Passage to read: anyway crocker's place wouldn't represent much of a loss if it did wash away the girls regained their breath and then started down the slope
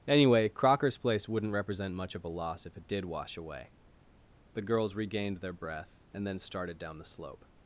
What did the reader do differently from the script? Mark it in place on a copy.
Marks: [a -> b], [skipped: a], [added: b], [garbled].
anyway crocker's place wouldn't represent much of a loss if it did wash away the girls regained their breath and then started down the slope